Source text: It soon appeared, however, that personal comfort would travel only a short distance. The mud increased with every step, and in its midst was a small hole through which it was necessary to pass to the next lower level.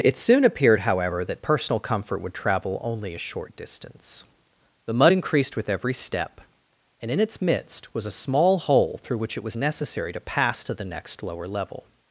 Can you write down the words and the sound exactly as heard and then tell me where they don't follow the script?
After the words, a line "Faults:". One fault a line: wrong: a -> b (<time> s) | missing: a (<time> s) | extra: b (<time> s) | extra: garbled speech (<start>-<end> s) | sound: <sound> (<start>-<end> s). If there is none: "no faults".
It soon appeared, however, that personal comfort would travel only a short distance. The mud increased with every step, and in its midst was a small hole through which it was necessary to pass to the next lower level.
Faults:
no faults